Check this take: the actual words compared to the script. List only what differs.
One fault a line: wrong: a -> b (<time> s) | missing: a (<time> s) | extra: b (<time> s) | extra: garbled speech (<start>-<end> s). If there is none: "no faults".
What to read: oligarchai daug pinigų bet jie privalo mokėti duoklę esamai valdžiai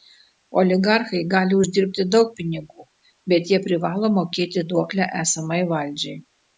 extra: gali uždirbti (1.3 s)